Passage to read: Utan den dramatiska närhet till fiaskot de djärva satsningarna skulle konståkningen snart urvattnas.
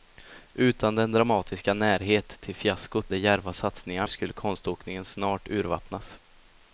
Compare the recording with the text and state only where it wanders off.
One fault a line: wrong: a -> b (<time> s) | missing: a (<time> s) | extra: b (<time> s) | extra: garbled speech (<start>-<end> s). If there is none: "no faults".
no faults